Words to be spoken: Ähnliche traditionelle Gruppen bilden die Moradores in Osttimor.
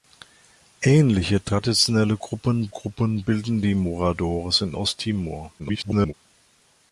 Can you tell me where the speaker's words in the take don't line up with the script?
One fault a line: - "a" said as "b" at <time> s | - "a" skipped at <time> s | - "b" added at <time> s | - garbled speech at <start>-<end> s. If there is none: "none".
- "Gruppen" added at 2.7 s
- garbled speech at 5.6-6.1 s